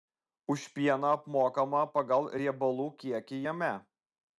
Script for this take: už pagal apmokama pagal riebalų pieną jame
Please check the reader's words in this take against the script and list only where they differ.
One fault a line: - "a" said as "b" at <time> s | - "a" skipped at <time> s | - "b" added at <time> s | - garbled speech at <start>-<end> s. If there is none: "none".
- "pagal" said as "pieną" at 0.8 s
- "pieną" said as "kiekį" at 3.0 s